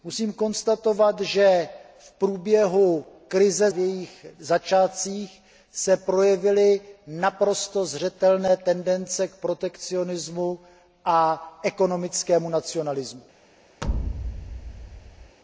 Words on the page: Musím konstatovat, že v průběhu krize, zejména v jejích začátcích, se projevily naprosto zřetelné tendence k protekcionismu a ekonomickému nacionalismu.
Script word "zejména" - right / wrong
wrong